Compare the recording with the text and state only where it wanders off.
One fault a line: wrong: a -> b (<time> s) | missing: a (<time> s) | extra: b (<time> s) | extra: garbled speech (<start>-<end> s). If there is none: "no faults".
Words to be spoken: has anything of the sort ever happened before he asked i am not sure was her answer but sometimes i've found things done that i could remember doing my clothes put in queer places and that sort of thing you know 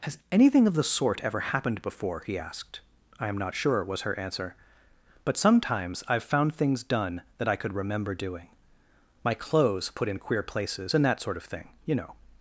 no faults